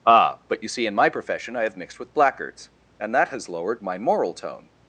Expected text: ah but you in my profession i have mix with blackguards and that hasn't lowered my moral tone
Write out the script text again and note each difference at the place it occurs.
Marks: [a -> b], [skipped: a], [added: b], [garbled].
ah but you [added: see] in my profession i have [mix -> mixed] with blackguards and that [hasn't -> has] lowered my moral tone